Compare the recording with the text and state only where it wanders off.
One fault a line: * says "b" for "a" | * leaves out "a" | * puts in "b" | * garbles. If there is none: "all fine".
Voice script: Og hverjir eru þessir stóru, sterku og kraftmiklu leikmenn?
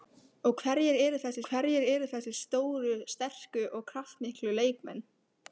* puts in "hverjir eru þessir"